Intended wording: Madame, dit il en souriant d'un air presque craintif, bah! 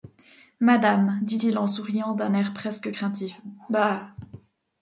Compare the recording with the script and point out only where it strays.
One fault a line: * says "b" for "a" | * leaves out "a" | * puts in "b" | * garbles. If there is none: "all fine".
all fine